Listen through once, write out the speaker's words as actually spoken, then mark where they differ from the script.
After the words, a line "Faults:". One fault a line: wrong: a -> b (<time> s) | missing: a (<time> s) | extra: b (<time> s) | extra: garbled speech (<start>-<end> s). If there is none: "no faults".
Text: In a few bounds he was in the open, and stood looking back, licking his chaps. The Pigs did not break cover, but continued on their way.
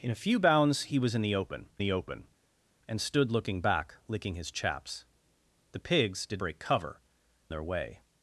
In a few bounds he was in the open the open, and stood looking back, licking his chaps. The Pigs did break cover, their way.
Faults:
extra: the open (1.8 s)
missing: not (6.4 s)
missing: but continued on (7.0 s)